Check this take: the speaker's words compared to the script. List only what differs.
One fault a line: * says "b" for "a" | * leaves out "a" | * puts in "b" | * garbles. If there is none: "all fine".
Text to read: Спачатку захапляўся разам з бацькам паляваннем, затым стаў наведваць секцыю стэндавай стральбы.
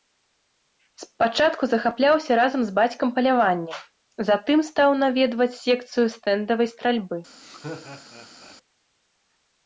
all fine